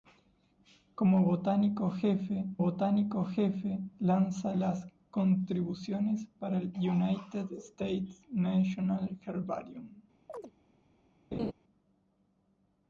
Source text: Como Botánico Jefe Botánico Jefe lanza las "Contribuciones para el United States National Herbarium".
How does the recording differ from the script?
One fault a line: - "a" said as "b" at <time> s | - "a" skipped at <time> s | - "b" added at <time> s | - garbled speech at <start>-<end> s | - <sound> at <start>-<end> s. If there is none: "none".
- chirp at 10.3-10.5 s
- laugh at 11.3-11.5 s